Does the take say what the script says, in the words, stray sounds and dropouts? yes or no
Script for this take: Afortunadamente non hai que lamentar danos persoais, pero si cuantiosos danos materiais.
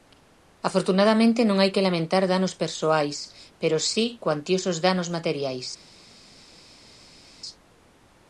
yes